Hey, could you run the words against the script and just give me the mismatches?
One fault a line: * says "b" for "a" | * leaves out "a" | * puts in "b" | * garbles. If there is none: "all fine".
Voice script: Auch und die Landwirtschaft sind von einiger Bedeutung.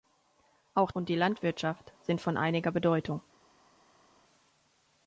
all fine